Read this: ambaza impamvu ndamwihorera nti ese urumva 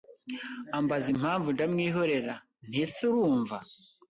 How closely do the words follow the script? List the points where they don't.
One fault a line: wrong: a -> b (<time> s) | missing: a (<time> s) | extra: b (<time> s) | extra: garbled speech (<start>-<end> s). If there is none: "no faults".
no faults